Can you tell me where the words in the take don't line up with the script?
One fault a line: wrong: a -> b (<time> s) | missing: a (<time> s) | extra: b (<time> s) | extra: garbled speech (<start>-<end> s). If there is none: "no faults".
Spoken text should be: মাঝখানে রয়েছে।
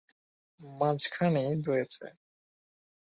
no faults